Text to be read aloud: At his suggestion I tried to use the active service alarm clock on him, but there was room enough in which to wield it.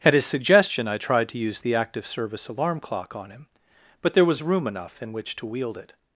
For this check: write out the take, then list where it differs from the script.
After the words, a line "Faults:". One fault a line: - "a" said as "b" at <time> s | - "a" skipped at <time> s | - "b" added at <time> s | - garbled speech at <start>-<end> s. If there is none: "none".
At his suggestion I tried to use the active service alarm clock on him, but there was room enough in which to wield it.
Faults:
none